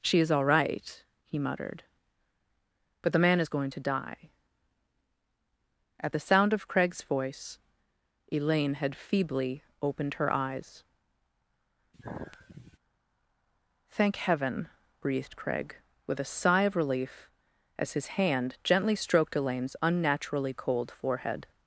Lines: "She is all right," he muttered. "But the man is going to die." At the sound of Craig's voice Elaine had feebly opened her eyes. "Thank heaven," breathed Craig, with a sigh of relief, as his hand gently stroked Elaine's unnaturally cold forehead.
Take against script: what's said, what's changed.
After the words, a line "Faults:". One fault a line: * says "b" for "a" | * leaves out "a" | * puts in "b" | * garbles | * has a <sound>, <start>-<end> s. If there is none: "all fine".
"She is all right," he muttered. "But the man is going to die." At the sound of Craig's voice Elaine had feebly opened her eyes. "Thank heaven," breathed Craig, with a sigh of relief, as his hand gently stroked Elaine's unnaturally cold forehead.
Faults:
* has a sigh, 11.9-12.8 s